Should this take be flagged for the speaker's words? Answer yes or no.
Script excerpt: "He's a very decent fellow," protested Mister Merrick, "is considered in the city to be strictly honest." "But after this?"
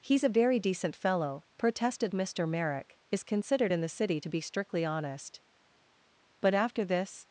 no